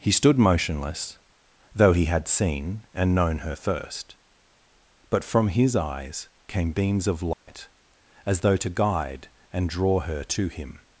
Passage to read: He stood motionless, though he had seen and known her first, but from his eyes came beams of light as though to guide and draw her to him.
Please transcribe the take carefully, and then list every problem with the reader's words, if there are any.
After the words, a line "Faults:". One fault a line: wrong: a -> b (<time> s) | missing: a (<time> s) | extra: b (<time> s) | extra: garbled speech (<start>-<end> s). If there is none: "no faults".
He stood motionless, though he had seen and known her first, but from his eyes came beams of light as though to guide and draw her to him.
Faults:
no faults